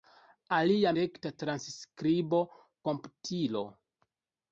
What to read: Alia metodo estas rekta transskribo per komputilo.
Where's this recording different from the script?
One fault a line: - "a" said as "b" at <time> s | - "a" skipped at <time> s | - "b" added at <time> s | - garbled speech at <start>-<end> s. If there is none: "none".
- "metodo estas" skipped at 0.9 s
- "per" skipped at 2.4 s